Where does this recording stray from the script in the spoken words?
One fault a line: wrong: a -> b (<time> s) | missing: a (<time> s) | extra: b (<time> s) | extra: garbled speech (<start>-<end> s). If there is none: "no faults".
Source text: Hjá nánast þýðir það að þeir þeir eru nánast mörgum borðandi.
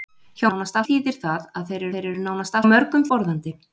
no faults